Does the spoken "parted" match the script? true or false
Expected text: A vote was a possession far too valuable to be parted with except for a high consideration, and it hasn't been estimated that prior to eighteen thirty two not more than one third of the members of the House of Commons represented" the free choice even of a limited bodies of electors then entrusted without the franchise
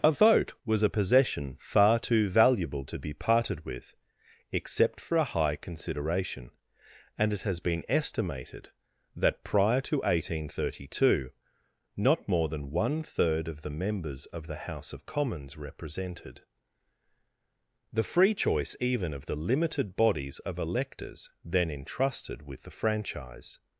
true